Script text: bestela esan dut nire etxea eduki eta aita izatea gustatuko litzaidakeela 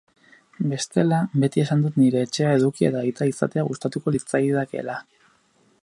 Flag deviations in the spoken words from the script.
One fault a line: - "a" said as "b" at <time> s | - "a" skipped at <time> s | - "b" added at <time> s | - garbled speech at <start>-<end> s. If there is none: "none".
- "beti" added at 1.4 s